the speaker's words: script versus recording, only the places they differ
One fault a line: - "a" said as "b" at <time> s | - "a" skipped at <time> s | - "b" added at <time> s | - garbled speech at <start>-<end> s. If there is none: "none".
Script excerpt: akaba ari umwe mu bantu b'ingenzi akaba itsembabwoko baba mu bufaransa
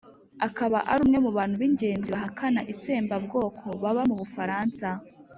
- "akaba" said as "bahakana" at 2.1 s